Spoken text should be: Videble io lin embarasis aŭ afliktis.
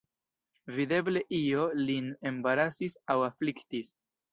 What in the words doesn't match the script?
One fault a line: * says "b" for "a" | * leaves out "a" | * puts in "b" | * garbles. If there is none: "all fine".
all fine